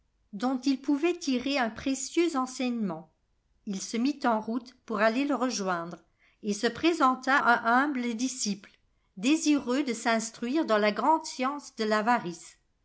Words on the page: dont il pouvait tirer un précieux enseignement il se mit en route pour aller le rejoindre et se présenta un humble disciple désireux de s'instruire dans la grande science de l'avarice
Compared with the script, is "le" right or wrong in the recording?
right